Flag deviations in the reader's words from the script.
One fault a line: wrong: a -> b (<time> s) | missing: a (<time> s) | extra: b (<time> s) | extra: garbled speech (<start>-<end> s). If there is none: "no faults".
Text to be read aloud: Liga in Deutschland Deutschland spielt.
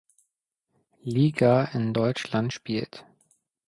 missing: Deutschland (2.5 s)